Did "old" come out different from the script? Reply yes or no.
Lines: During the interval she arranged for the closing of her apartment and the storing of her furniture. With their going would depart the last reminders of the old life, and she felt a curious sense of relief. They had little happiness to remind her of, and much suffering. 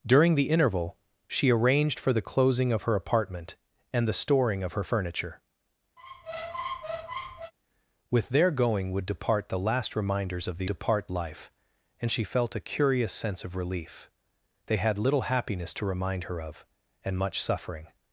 yes